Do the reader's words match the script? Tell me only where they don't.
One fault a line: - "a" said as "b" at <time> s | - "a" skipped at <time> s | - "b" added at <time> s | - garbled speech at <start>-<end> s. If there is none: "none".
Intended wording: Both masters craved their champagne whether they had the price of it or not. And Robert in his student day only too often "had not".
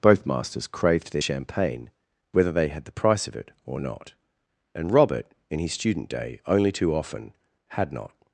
none